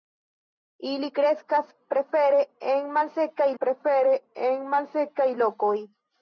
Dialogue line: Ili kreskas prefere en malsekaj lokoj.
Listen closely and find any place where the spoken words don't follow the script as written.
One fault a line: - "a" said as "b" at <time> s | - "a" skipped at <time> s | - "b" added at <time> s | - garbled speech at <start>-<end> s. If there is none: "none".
- "prefere en malsekaj" added at 3.6 s